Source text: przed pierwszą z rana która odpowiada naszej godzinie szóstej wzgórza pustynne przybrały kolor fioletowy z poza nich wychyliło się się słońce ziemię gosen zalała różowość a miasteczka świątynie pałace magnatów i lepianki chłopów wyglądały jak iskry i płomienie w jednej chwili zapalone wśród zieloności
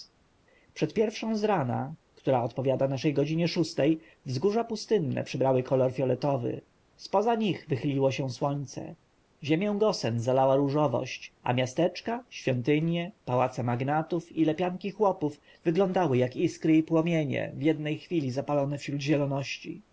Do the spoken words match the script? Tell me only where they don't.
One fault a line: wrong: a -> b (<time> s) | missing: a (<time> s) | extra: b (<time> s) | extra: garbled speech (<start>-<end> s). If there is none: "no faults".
missing: się (8.3 s)